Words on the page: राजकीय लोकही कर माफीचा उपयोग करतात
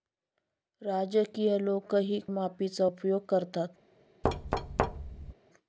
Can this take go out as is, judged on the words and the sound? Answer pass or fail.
fail